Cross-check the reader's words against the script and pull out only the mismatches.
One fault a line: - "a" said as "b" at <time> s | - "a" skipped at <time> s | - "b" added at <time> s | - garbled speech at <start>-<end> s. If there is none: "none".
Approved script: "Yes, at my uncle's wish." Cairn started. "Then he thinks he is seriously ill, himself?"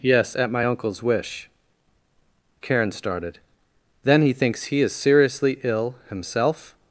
- "Cairn" said as "Karen" at 2.6 s